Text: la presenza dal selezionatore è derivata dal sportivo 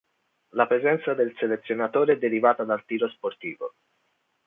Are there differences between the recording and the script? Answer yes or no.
yes